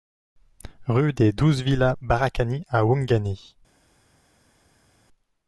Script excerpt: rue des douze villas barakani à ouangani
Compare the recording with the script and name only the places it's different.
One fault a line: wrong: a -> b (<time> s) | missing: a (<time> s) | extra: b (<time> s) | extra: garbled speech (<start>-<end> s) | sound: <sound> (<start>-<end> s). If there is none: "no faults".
no faults